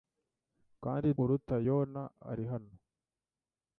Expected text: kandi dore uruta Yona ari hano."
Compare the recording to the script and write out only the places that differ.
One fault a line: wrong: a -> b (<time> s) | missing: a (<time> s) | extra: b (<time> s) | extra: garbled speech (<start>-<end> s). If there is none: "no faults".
missing: dore (1.1 s)